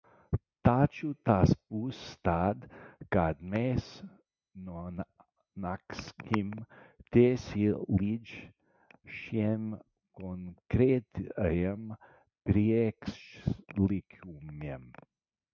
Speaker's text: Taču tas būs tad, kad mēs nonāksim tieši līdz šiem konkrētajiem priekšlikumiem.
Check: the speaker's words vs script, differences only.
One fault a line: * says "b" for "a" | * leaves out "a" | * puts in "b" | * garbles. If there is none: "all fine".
all fine